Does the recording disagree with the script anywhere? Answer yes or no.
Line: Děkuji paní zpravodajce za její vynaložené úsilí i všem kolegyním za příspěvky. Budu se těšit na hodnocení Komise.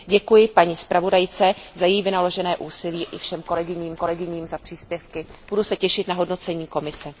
yes